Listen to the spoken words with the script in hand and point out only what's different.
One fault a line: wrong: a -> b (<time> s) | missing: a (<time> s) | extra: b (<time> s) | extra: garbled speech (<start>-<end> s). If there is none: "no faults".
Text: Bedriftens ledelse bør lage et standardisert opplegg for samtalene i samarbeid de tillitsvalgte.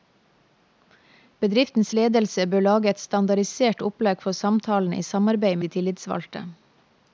no faults